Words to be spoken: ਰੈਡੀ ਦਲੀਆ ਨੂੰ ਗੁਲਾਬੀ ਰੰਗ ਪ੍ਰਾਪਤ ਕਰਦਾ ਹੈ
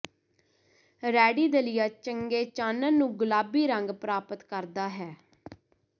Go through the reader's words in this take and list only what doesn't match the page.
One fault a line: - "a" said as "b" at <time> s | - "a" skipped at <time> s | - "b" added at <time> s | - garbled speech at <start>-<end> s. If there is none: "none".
- "ਚੰਗੇ ਚਾਨਣ" added at 1.9 s